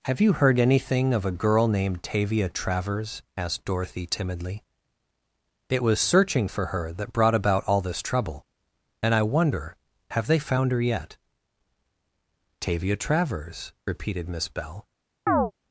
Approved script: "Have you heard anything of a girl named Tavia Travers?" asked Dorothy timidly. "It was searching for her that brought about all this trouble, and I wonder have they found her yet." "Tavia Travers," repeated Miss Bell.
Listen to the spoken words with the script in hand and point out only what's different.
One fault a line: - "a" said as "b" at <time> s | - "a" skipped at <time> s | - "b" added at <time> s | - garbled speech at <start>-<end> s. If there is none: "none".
none